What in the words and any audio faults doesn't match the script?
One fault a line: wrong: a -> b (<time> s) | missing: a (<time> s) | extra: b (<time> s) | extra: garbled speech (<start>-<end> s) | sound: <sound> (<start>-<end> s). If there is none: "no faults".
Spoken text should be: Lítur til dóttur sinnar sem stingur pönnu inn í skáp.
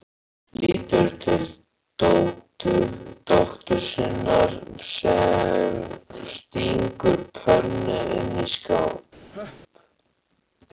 sound: laugh (9.3-9.6 s)